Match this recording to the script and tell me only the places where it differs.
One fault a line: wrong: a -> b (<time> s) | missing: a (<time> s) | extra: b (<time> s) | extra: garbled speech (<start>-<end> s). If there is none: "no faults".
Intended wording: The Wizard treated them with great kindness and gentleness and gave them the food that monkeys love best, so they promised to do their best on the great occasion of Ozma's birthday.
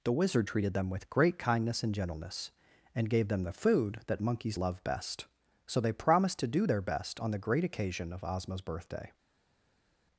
no faults